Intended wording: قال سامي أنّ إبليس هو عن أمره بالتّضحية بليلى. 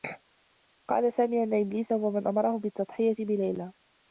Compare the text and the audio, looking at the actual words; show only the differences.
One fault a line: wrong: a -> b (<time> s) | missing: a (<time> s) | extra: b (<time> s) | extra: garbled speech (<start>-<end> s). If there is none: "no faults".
wrong: عن -> من (2.1 s)